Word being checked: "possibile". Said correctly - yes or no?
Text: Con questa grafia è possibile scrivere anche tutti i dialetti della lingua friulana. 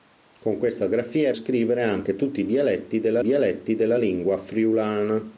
no